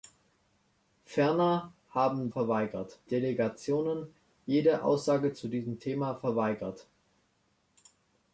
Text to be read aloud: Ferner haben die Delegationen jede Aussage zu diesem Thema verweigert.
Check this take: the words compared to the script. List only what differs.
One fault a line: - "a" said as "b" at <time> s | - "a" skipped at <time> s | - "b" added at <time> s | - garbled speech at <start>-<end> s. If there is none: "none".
- "die" said as "verweigert" at 2.3 s